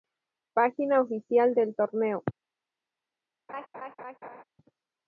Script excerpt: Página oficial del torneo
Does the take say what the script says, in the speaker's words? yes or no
yes